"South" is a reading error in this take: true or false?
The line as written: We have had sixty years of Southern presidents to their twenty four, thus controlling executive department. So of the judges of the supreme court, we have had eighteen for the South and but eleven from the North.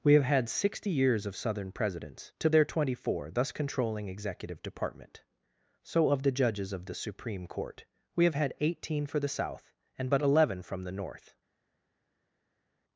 false